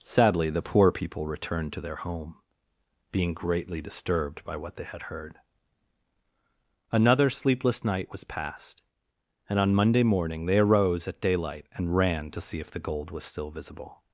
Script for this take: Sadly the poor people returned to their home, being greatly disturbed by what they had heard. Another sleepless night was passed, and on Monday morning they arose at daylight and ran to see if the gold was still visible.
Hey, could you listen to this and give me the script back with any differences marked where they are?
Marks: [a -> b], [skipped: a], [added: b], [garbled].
Sadly the poor people returned to their home, being greatly disturbed by what they had heard. Another sleepless night was passed, and on Monday morning they arose at daylight and ran to see if the gold was still visible.